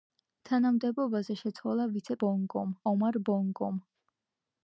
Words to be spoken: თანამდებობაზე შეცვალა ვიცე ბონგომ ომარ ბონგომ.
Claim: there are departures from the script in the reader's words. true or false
false